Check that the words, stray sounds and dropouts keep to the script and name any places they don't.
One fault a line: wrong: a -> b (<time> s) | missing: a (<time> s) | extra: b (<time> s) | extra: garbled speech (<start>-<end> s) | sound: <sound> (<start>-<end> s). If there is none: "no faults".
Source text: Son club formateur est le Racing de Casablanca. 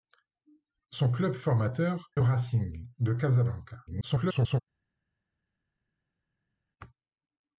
missing: est (2.1 s)
extra: garbled speech (3.9-4.6 s)